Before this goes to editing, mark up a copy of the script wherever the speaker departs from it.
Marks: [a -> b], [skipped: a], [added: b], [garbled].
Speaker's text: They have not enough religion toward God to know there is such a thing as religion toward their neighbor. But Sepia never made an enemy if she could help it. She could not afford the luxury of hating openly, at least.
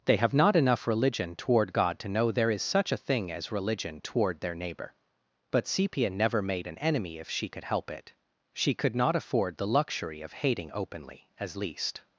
They have not enough religion toward God to know there is such a thing as religion toward their neighbor. But Sepia never made an enemy if she could help it. She could not afford the luxury of hating openly, [at -> as] least.